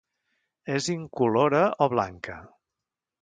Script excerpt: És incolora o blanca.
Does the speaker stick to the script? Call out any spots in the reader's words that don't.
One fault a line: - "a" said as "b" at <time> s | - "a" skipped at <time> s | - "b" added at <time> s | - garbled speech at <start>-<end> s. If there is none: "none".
none